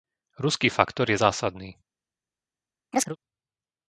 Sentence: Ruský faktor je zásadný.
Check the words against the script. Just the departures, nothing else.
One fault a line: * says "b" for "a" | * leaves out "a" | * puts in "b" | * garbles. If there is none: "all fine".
all fine